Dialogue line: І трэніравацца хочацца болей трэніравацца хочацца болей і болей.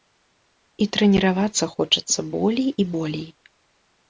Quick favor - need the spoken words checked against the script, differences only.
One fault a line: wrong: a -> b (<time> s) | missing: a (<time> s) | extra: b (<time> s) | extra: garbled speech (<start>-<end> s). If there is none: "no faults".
missing: трэніравацца хочацца болей (2.7 s)